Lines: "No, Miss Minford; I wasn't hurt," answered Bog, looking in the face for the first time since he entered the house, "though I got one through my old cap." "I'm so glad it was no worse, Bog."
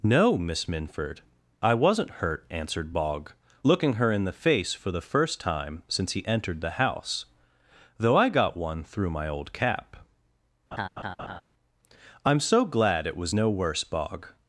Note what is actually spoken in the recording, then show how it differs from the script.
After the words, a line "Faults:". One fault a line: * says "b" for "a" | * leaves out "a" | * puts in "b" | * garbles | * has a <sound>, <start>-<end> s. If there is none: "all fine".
"No, Miss Minford; I wasn't hurt," answered Bog, looking her in the face for the first time since he entered the house, "though I got one through my old cap." "I'm so glad it was no worse, Bog."
Faults:
* puts in "her"
* has a laugh, 10.7-11.4 s